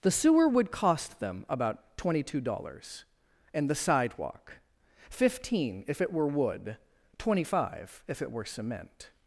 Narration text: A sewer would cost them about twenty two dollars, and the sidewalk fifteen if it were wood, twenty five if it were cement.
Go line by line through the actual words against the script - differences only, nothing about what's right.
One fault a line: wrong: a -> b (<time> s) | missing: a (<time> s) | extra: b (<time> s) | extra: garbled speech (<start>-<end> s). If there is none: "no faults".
wrong: A -> The (0.0 s)